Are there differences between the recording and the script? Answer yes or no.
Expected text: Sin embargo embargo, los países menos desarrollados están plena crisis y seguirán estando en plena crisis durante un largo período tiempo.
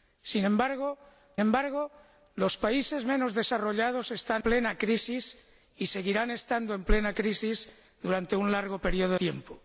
no